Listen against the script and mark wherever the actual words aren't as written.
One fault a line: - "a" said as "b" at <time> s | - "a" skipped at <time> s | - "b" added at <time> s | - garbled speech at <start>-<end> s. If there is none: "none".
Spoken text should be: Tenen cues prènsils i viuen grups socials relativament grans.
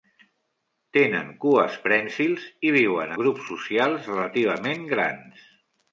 none